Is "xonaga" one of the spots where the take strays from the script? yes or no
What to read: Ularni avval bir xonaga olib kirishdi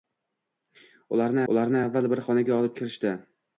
no